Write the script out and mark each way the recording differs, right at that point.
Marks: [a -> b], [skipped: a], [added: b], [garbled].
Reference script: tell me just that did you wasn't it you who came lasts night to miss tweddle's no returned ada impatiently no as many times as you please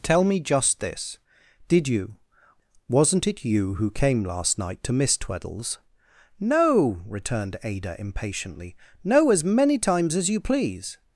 tell me just [that -> this] did you wasn't it you who came [lasts -> last] night to miss tweddle's no returned ada impatiently no as many times as you please